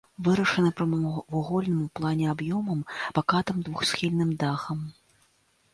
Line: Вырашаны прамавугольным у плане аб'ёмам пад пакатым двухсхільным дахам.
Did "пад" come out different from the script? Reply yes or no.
yes